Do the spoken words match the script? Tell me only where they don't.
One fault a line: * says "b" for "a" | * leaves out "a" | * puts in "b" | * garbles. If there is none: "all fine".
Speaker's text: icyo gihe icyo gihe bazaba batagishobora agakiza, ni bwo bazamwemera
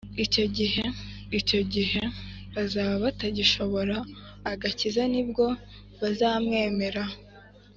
all fine